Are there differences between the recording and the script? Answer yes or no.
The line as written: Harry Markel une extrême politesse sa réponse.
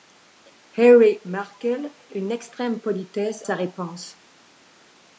no